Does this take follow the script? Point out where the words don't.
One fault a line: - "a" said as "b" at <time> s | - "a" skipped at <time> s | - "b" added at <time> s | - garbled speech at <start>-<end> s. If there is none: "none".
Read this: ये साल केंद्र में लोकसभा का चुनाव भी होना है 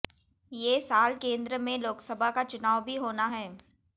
none